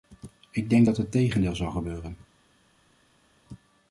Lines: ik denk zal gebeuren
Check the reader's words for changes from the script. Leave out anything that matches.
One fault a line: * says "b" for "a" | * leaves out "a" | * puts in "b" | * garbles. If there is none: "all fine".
* puts in "dat het tegendeel"